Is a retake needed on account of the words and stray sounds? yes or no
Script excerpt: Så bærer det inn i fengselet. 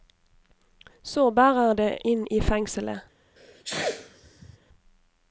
yes